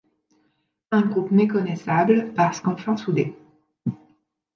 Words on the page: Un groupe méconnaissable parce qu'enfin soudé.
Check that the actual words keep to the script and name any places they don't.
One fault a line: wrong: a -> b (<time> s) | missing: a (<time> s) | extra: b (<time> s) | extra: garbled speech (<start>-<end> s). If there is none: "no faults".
no faults